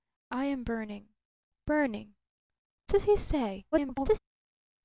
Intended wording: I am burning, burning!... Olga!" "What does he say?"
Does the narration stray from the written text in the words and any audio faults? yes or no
yes